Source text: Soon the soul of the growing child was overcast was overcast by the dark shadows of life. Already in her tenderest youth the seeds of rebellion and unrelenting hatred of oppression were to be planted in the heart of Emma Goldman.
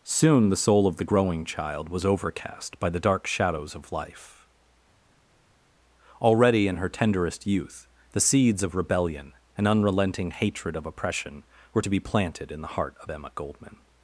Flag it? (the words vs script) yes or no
yes